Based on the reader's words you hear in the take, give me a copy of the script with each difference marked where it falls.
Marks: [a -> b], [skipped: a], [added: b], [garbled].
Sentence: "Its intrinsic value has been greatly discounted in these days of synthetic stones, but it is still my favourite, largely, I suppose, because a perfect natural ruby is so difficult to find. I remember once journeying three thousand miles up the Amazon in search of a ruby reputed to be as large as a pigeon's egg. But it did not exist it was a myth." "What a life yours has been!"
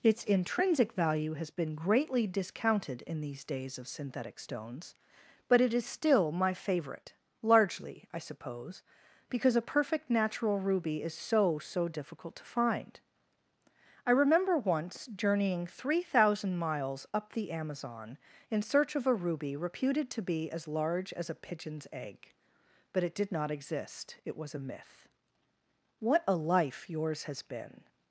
"Its intrinsic value has been greatly discounted in these days of synthetic stones, but it is still my favourite, largely, I suppose, because a perfect natural ruby is so [added: so] difficult to find. I remember once journeying three thousand miles up the Amazon in search of a ruby reputed to be as large as a pigeon's egg. But it did not exist it was a myth." "What a life yours has been!"